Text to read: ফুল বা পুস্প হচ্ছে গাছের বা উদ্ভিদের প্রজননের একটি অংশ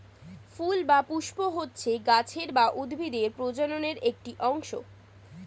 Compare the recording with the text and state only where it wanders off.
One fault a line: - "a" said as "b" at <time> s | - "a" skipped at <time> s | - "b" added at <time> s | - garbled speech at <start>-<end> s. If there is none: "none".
none